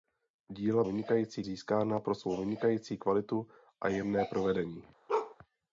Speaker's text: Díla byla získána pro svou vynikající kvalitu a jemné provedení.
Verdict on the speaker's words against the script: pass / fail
fail